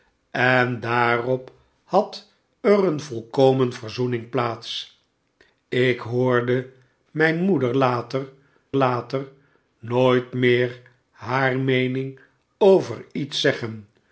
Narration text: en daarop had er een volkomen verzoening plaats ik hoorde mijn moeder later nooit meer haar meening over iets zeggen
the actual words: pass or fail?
fail